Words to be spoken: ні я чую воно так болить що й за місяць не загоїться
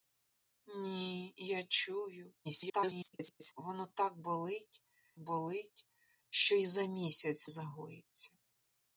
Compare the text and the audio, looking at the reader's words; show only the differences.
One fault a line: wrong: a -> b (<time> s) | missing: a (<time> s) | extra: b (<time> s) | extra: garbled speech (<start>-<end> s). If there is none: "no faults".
extra: garbled speech (2.4-3.5 s)
extra: болить (5.2 s)
missing: не (7.5 s)